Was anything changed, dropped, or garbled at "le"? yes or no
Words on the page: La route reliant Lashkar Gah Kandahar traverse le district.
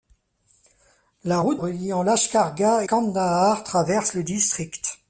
no